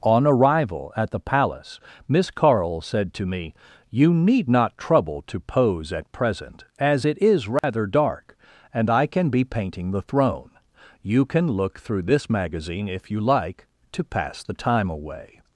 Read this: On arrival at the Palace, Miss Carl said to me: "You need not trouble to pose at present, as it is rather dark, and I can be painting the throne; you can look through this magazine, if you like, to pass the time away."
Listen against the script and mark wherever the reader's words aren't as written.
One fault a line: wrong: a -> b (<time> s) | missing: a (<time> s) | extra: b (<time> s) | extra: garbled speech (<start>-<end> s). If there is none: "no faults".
no faults